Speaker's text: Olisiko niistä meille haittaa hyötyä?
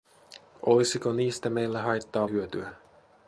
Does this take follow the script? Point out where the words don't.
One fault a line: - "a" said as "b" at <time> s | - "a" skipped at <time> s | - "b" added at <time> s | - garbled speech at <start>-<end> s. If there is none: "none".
none